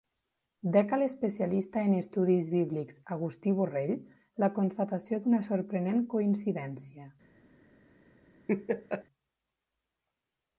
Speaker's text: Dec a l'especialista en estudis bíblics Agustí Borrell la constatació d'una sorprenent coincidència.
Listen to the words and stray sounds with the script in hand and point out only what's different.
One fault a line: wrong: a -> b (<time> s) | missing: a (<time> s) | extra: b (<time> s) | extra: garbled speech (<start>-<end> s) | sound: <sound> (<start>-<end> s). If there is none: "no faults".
sound: laugh (8.5-9.0 s)